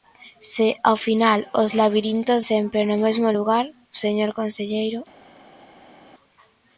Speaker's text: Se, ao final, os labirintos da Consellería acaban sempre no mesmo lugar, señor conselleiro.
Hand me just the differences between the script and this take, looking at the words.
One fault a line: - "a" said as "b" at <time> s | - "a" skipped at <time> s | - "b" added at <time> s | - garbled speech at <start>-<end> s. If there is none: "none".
- "da Consellería acaban" skipped at 2.4 s